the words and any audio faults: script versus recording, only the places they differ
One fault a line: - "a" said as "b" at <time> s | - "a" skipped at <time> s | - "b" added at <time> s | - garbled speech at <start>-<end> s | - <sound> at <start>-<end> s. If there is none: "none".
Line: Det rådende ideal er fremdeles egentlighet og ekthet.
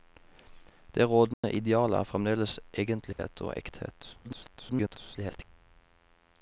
- dropout at 1.3-1.4 s
- dropout at 3.1-3.2 s
- garbled speech at 4.2-5.4 s